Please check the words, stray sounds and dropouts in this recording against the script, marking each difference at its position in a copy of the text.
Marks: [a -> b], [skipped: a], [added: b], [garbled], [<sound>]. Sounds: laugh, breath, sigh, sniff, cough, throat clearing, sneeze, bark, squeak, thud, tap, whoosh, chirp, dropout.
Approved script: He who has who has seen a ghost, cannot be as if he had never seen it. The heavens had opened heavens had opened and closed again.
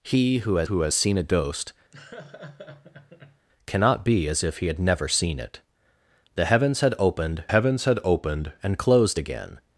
He who has who has seen a ghost, [laugh] cannot be as if he had never seen it. The heavens had opened heavens had opened and closed again.